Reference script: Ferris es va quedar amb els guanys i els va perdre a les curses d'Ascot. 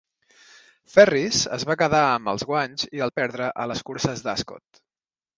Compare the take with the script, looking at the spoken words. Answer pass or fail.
fail